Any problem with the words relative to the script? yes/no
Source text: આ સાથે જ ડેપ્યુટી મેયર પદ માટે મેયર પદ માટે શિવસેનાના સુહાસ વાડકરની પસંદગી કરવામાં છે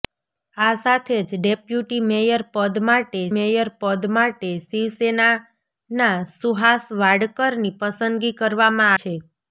no